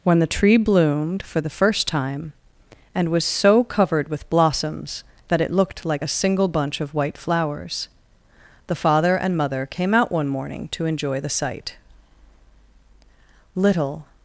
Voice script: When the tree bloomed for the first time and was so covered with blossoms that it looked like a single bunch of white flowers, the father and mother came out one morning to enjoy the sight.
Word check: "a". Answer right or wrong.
right